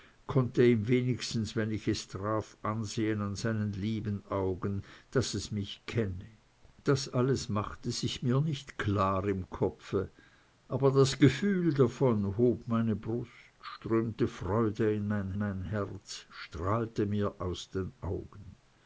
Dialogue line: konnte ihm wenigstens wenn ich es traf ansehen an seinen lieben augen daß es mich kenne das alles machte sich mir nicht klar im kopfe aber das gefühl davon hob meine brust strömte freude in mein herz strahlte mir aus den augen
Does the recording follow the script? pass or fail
fail